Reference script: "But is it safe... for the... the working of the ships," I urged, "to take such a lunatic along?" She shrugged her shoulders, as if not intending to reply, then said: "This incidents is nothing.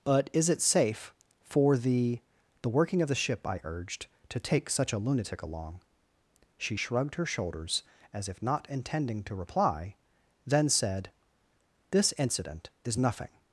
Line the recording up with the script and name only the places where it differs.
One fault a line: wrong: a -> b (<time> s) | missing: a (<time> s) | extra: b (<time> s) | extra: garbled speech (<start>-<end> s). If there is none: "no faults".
wrong: ships -> ship (3.2 s)
wrong: incidents -> incident (12.2 s)